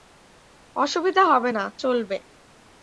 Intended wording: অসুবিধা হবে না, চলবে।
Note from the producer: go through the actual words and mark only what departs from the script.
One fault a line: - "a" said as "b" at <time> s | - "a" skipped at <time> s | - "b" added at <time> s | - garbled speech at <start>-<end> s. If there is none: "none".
none